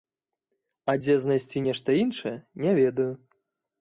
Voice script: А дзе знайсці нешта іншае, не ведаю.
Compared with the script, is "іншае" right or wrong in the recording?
right